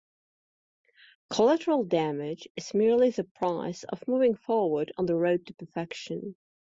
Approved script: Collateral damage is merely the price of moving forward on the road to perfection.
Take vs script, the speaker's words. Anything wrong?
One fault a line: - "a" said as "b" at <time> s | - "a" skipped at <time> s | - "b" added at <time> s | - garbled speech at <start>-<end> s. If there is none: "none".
none